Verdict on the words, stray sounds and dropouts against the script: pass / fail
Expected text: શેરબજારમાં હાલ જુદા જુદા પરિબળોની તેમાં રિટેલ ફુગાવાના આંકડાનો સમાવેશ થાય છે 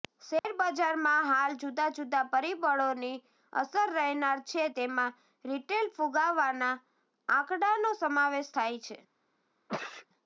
fail